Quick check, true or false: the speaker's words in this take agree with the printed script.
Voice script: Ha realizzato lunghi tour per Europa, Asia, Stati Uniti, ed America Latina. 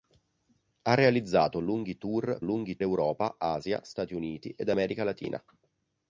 false